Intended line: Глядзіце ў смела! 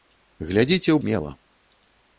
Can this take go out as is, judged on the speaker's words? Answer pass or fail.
pass